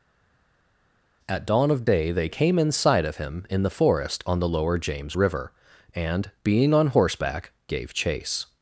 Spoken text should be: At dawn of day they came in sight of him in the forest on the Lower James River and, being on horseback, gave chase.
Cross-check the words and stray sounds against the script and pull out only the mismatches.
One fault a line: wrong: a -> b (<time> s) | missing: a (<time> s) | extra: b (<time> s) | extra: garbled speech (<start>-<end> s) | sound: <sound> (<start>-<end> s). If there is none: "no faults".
no faults